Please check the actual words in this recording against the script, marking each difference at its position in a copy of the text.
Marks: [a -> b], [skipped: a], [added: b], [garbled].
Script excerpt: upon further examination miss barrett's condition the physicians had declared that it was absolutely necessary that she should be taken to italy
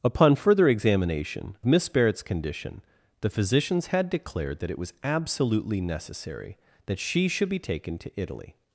upon further examination miss barrett's condition the physicians had declared that it was absolutely necessary that she should be taken to italy